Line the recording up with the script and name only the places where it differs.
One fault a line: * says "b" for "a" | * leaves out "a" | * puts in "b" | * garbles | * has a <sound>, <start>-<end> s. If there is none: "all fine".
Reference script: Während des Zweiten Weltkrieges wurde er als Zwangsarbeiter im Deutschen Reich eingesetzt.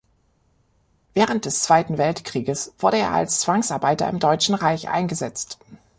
all fine